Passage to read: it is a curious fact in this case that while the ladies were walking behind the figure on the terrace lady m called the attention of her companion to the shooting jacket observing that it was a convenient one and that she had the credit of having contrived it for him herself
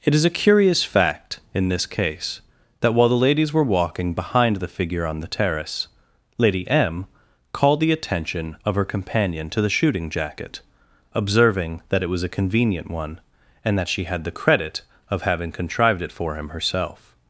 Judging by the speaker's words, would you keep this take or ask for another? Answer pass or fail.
pass